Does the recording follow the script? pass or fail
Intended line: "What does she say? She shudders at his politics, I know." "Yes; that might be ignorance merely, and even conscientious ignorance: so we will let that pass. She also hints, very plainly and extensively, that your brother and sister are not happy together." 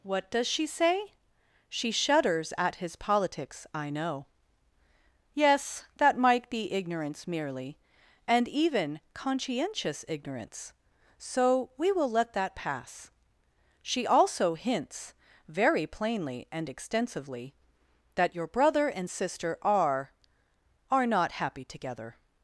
fail